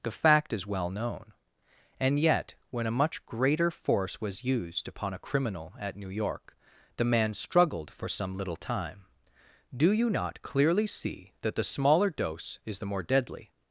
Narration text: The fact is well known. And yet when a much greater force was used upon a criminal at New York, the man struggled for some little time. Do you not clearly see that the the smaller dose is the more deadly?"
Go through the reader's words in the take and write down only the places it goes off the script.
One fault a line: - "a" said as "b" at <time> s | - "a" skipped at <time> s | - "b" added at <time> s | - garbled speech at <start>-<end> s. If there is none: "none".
- "the" skipped at 11.6 s